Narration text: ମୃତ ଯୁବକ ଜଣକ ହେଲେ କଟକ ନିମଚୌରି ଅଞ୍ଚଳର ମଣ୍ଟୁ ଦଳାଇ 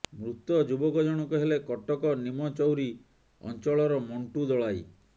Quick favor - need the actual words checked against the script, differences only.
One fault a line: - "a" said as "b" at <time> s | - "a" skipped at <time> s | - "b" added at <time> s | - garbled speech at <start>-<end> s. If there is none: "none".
none